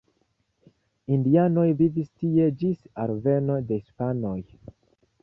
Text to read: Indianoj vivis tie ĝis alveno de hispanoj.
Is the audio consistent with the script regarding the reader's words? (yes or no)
yes